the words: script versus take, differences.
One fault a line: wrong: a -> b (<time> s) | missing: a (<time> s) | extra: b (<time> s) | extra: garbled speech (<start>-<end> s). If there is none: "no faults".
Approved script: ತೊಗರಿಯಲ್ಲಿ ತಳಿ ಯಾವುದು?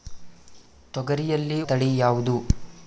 no faults